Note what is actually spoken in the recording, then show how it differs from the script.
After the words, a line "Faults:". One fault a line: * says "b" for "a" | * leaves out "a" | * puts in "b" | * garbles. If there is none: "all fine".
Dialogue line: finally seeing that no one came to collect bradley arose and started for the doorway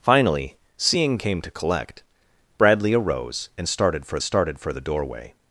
finally seeing came to collect bradley arose and started for started for the doorway
Faults:
* leaves out "that no one"
* puts in "started for"